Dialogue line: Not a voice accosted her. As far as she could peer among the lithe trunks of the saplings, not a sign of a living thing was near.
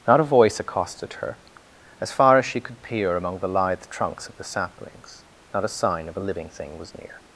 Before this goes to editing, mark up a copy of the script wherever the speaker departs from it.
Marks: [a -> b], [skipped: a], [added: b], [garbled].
Not a voice accosted her. As far as she could peer among the lithe trunks of the saplings, not a sign of a living thing was near.